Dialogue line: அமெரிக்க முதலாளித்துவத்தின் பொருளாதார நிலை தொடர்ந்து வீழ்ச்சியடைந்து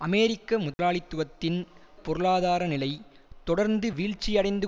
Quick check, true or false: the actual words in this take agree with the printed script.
true